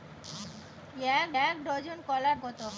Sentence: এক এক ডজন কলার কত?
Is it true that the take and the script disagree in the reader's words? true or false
false